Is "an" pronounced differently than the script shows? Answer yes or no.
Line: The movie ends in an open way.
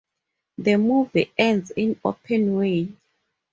yes